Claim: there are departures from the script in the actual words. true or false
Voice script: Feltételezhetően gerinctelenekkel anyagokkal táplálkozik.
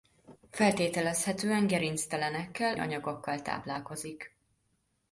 false